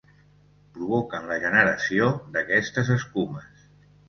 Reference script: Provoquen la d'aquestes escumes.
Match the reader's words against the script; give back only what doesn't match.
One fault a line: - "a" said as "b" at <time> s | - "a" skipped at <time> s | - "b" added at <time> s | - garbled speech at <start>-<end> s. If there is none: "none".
- "generació" added at 1.4 s